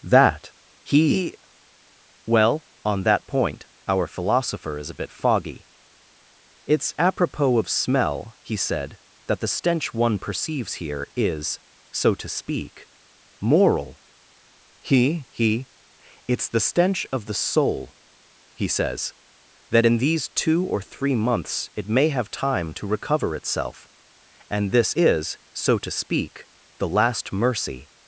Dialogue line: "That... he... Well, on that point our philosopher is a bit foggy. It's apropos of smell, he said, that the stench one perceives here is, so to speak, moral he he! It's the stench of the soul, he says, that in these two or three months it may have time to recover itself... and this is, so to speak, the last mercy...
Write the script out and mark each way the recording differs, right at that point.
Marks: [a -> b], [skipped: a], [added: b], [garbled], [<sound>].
"That... he... Well, on that point our philosopher is a bit foggy. It's apropos of smell, he said, that the stench one perceives here is, so to speak, moral he he! It's the stench of the soul, he says, that in these two or three months it may have time to recover itself... and this is, so to speak, the last mercy...